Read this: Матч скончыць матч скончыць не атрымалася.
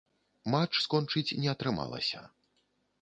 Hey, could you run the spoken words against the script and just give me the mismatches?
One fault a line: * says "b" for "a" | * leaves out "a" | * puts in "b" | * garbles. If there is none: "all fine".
* leaves out "матч скончыць"